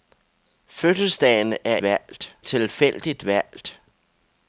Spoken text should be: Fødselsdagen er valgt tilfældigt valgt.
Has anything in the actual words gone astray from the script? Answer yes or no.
no